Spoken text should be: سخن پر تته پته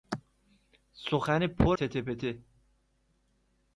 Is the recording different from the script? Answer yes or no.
no